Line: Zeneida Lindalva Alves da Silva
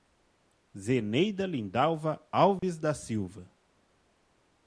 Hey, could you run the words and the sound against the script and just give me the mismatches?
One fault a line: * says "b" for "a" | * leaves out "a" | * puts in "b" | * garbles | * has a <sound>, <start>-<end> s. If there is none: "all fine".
* has a dropout, 2.6-2.6 s